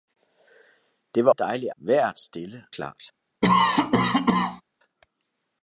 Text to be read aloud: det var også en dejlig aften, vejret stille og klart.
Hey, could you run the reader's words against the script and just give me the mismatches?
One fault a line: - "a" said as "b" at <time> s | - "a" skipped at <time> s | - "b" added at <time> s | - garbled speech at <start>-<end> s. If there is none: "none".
- "også" skipped at 1.3 s
- "aften" skipped at 1.7 s
- "og" skipped at 2.7 s